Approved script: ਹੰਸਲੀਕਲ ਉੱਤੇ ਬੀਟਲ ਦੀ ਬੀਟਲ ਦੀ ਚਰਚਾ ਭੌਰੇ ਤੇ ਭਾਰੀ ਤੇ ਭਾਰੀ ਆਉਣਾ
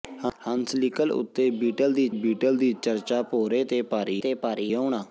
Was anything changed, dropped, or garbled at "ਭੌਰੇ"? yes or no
no